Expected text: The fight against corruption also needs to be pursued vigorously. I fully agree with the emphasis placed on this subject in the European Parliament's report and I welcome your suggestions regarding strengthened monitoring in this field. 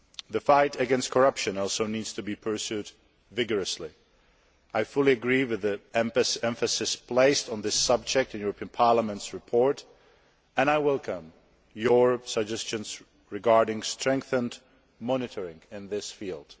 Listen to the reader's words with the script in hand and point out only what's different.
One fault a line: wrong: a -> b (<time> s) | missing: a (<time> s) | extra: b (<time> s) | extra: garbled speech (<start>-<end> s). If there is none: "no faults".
no faults